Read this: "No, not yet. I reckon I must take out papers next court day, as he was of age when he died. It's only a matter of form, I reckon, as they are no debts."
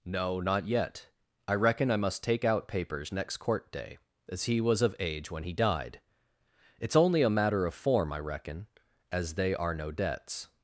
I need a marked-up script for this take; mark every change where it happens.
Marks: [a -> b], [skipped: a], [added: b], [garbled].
"No, not yet. I reckon I must take out papers next court day, as he was of age when he died. It's only a matter of form, I reckon, as they are no debts."